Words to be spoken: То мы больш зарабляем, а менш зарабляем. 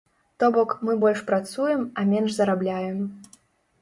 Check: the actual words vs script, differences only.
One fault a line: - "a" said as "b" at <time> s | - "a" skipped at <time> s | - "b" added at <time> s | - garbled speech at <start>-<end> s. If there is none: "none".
- "бок" added at 0.6 s
- "зарабляем" said as "працуем" at 1.3 s